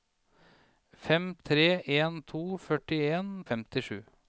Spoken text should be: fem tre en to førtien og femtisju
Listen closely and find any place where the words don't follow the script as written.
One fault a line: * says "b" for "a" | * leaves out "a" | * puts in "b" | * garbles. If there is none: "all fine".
all fine